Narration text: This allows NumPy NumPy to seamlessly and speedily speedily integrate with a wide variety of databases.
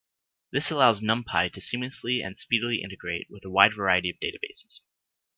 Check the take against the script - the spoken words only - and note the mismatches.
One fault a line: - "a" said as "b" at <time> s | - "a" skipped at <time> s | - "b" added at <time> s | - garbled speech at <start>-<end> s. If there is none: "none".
- "NumPy" skipped at 1.5 s
- "speedily" skipped at 2.8 s